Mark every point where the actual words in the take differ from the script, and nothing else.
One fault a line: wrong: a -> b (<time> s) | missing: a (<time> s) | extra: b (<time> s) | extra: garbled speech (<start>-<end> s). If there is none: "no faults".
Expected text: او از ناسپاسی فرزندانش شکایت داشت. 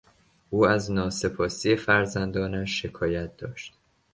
no faults